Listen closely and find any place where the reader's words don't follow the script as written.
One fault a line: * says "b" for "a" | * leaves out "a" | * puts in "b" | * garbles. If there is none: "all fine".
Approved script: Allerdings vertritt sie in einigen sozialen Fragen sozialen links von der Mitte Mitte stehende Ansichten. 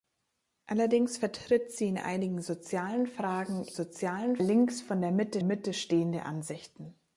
all fine